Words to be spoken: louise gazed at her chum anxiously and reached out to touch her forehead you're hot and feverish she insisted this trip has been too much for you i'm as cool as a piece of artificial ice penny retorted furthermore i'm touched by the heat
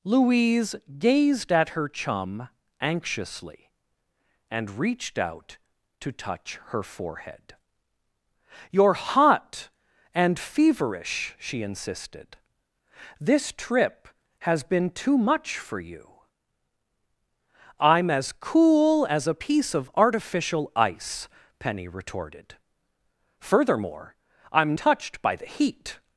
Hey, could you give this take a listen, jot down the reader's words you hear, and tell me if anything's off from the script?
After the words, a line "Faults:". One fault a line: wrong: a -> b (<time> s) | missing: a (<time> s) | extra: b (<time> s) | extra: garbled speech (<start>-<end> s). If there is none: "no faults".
louise gazed at her chum anxiously and reached out to touch her forehead you're hot and feverish she insisted this trip has been too much for you i'm as cool as a piece of artificial ice penny retorted furthermore i'm touched by the heat
Faults:
no faults